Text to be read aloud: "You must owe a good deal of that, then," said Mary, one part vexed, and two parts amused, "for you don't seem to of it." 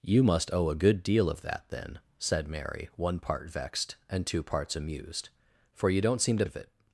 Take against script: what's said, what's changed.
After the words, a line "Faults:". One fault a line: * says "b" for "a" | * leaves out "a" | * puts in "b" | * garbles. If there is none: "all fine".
"You must owe a good deal of that, then," said Mary, one part vexed, and two parts amused, "for you don't seem to of it."
Faults:
all fine